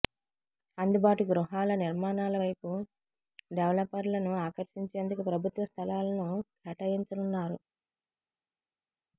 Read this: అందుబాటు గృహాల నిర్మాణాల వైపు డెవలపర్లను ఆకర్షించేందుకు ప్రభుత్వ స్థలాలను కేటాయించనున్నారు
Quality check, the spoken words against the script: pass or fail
pass